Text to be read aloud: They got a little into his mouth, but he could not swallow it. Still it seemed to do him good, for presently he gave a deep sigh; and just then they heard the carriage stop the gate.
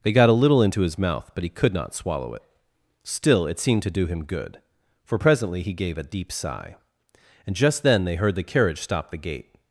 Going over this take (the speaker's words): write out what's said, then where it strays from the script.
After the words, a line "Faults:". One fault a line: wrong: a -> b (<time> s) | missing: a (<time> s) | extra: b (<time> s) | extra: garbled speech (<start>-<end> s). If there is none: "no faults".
They got a little into his mouth, but he could not swallow it. Still it seemed to do him good, for presently he gave a deep sigh; and just then they heard the carriage stop the gate.
Faults:
no faults